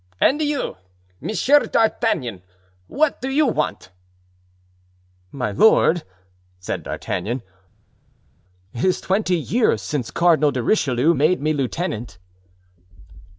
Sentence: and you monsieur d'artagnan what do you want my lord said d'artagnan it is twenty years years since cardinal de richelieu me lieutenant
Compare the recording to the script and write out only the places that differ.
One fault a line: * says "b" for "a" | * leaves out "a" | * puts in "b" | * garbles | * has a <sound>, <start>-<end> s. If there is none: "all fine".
* leaves out "years"
* puts in "made"